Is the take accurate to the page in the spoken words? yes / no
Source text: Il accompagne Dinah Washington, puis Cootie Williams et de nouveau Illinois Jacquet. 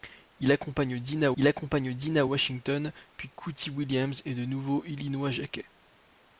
no